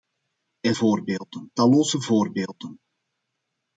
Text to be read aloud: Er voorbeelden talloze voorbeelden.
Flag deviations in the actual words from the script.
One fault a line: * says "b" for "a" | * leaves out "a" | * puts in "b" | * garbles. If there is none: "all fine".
all fine